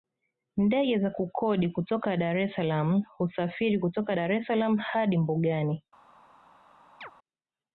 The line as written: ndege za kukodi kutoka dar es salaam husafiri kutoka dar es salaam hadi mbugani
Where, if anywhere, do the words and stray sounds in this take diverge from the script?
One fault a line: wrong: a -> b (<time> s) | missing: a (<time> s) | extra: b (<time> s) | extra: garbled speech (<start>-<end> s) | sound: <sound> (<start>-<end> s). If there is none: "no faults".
sound: chirp (7.0-7.1 s)